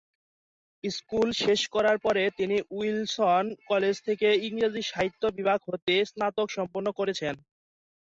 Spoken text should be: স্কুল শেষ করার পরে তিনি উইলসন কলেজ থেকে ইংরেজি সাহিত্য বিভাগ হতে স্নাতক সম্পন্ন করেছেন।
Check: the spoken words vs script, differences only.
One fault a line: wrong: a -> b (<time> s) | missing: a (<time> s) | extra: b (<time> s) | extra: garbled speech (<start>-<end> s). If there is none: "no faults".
no faults